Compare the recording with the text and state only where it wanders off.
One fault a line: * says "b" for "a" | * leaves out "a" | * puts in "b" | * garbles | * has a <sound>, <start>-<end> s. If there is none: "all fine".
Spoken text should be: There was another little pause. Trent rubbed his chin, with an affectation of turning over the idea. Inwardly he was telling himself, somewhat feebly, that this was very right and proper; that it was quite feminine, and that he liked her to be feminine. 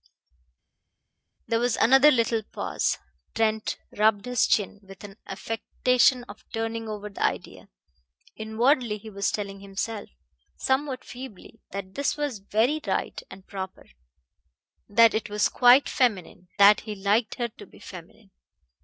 * leaves out "and"